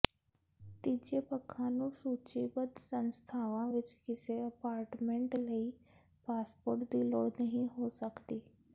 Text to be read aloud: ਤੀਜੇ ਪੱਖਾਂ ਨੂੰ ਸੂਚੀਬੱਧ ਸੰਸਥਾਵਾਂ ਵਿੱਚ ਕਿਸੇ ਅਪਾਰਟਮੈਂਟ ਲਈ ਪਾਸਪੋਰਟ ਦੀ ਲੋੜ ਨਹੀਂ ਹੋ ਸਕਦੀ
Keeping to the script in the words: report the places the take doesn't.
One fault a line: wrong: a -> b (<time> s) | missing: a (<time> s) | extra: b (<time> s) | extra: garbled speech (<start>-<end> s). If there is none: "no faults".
no faults